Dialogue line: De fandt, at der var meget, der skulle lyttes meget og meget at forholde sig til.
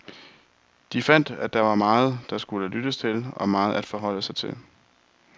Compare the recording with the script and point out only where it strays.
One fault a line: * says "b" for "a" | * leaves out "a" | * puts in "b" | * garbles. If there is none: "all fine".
* says "til" for "meget"